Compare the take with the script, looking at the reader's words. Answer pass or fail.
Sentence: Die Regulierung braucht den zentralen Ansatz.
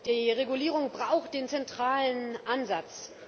pass